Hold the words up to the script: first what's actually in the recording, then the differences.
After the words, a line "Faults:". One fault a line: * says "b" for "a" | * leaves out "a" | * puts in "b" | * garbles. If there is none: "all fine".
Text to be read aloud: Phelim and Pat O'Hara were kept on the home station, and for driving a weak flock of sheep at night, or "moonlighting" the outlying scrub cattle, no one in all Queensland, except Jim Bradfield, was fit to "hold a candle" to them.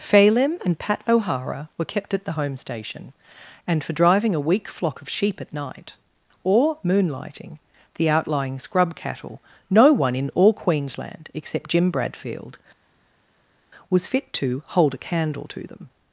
Phelim and Pat O'Hara were kept at the home station, and for driving a weak flock of sheep at night, or "moonlighting" the outlying scrub cattle, no one in all Queensland, except Jim Bradfield, was fit to "hold a candle" to them.
Faults:
* says "at" for "on"